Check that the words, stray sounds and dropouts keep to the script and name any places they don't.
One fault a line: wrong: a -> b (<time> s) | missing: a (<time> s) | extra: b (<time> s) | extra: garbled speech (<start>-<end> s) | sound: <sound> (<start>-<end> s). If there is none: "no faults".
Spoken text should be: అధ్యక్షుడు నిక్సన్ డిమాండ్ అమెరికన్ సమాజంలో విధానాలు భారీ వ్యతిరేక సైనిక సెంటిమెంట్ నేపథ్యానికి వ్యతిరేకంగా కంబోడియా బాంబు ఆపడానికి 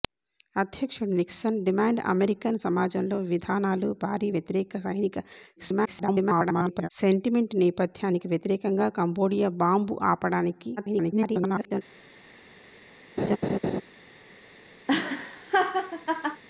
extra: garbled speech (5.6-6.9 s)
extra: garbled speech (10.8-11.8 s)
sound: laugh (13.2-13.8 s)
sound: laugh (14.9-16.4 s)